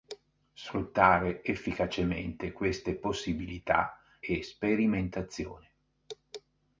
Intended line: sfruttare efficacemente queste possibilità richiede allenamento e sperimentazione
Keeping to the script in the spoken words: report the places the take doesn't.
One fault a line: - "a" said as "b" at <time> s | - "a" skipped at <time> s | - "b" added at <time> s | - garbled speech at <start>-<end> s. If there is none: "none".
- "richiede allenamento" skipped at 4.0 s